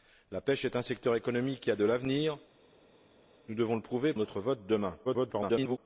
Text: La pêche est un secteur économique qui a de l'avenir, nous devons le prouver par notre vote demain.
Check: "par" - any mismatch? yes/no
yes